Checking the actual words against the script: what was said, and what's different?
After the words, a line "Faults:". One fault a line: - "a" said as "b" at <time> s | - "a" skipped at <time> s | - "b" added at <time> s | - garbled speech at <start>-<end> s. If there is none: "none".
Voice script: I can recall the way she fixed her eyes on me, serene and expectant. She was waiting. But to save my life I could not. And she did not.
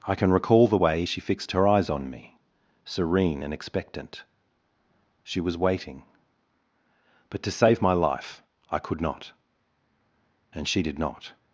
I can recall the way she fixed her eyes on me, serene and expectant. She was waiting. But to save my life I could not. And she did not.
Faults:
none